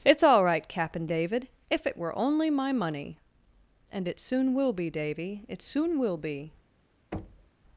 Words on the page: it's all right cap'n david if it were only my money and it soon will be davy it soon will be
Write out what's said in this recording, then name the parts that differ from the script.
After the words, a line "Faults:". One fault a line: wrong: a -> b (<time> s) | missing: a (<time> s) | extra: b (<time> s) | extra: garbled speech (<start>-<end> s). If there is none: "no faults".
it's all right cap'n david if it were only my money and it soon will be davy it soon will be
Faults:
no faults